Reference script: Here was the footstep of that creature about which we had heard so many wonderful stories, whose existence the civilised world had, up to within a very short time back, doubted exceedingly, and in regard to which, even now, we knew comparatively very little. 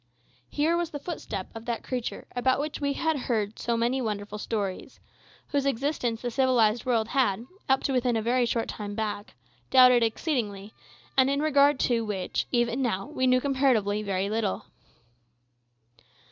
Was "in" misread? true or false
false